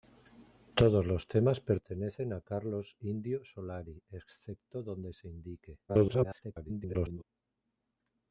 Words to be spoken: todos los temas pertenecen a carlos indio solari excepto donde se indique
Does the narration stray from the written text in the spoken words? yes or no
yes